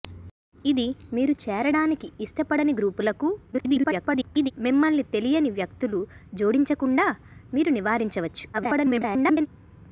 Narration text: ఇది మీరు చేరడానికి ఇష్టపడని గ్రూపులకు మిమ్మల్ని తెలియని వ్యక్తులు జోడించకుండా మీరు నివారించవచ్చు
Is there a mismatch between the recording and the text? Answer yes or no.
yes